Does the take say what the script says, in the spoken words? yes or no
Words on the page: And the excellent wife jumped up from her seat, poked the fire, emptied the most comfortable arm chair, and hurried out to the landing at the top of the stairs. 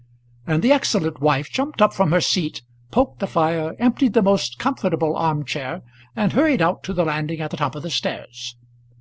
yes